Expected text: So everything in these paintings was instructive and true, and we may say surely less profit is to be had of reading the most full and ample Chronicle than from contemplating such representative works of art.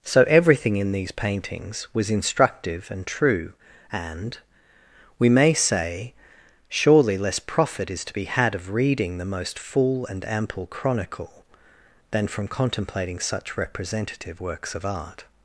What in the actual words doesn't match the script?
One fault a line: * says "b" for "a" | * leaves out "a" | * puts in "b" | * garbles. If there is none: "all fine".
all fine